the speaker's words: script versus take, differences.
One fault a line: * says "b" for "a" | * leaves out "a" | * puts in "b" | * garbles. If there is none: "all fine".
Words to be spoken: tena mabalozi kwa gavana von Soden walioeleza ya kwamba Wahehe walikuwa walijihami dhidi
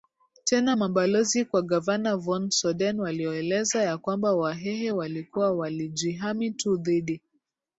* puts in "tu"